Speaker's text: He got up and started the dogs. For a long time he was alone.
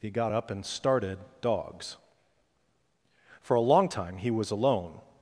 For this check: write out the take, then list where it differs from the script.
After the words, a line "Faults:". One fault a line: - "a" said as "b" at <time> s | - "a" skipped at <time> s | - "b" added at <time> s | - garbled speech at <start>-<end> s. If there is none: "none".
He got up and started dogs. For a long time he was alone.
Faults:
- "the" skipped at 1.2 s